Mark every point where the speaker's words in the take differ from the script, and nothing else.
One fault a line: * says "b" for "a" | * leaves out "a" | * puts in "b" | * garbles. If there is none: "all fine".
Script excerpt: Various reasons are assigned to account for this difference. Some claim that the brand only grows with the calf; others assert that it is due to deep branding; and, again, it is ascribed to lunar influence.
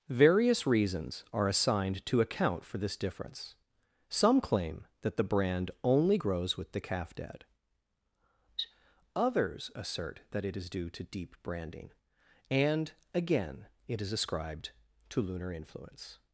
* puts in "dad"